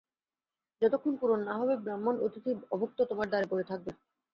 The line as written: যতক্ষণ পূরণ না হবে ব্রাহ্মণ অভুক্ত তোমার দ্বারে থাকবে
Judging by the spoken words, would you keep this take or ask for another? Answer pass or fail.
fail